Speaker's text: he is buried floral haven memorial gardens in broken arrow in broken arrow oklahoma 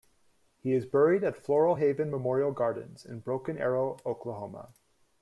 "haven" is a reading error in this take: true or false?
false